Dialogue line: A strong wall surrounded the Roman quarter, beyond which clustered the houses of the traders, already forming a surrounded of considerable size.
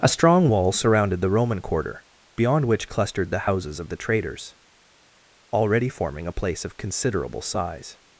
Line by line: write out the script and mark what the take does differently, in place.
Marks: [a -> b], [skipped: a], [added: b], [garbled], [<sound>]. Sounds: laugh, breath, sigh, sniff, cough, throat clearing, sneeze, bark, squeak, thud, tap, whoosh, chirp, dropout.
A strong wall surrounded the Roman quarter, beyond which clustered the houses of the traders, already forming a [surrounded -> place] of considerable size.